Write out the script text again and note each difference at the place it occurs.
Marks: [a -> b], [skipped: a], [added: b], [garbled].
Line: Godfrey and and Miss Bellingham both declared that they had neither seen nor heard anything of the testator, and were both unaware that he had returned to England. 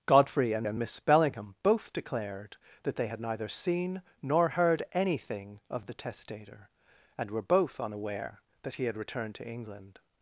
Godfrey and and Miss Bellingham both declared that they had neither seen nor heard anything of the testator, and were both unaware that he had returned to England.